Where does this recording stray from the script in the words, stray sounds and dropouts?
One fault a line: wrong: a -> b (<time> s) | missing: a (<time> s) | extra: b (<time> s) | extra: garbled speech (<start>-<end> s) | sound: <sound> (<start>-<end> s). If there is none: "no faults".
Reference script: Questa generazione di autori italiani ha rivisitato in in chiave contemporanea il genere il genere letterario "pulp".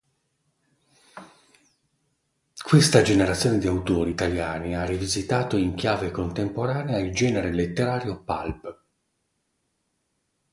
missing: in (5.7 s)
missing: il genere (7.5 s)